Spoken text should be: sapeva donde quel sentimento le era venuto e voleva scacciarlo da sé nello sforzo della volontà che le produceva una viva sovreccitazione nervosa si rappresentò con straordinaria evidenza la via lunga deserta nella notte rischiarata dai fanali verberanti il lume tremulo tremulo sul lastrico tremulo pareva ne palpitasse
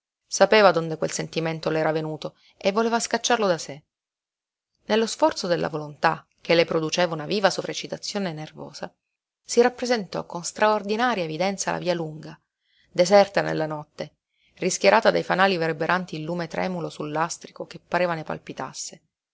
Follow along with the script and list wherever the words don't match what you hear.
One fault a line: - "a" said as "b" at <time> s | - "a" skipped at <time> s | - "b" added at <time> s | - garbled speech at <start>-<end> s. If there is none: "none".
- "tremulo" skipped at 16.9 s
- "tremulo" said as "che" at 17.7 s